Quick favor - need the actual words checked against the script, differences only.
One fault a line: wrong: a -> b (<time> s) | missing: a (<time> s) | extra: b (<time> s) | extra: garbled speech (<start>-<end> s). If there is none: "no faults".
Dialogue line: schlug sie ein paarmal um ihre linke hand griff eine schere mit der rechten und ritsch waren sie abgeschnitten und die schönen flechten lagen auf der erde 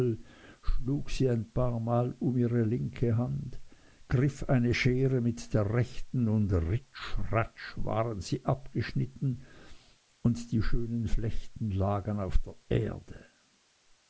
extra: ratsch (7.3 s)